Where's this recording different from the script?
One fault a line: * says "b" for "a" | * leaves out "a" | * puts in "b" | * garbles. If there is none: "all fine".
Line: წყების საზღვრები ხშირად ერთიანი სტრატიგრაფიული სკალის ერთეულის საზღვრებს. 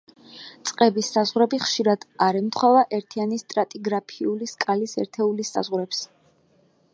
* puts in "არ ემთხვევა"